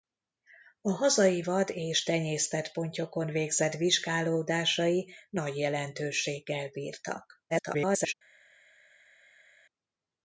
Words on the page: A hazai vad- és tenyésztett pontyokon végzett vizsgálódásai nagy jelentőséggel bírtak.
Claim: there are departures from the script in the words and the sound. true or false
true